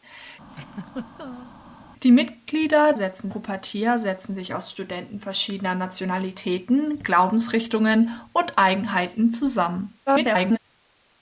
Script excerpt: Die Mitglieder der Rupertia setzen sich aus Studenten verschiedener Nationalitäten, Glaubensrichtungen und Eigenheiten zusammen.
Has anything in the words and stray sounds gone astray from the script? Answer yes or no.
yes